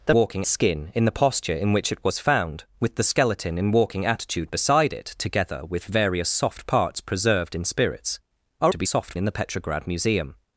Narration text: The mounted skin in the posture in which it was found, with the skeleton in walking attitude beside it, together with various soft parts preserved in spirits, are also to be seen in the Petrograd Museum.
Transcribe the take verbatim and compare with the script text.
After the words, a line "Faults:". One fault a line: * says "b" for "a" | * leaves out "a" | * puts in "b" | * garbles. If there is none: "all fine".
The walking skin in the posture in which it was found, with the skeleton in walking attitude beside it, together with various soft parts preserved in spirits, are to be soft in the Petrograd Museum.
Faults:
* says "walking" for "mounted"
* leaves out "also"
* says "soft" for "seen"